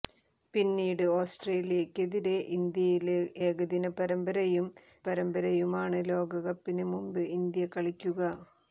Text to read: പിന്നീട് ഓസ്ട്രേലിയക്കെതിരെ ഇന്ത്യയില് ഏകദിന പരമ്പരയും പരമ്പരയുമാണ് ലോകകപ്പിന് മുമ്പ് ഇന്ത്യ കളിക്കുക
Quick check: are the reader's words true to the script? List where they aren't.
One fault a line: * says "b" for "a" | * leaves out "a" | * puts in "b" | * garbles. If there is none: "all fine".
all fine